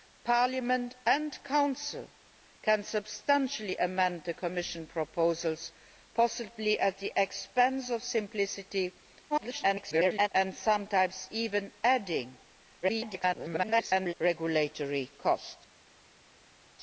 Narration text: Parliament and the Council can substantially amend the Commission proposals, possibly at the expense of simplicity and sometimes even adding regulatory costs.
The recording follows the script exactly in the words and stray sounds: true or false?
false